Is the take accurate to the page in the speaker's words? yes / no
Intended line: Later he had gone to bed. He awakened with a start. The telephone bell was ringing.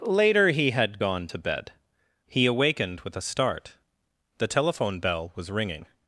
yes